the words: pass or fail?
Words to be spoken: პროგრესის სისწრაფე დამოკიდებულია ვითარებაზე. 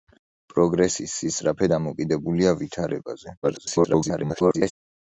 fail